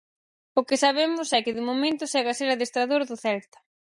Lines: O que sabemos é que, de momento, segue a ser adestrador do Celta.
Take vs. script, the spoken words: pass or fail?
pass